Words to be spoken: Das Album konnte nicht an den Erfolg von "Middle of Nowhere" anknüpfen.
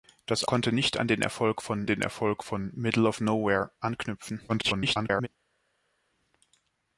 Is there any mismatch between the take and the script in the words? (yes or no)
yes